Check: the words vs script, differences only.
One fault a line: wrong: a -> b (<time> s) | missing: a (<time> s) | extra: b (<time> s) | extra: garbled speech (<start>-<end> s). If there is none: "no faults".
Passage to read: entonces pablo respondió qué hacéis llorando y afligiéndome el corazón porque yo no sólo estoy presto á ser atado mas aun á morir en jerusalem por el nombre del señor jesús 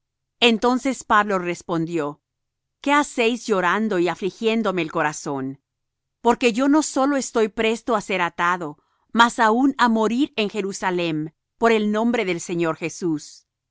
no faults